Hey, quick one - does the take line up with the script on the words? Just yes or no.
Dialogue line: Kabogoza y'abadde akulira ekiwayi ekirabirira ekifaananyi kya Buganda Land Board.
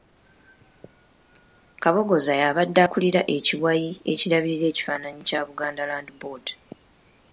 yes